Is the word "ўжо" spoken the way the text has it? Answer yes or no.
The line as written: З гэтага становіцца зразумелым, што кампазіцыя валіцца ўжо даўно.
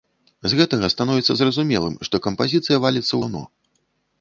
no